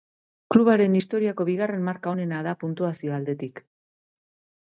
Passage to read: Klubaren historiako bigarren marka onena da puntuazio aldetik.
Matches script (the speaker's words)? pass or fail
pass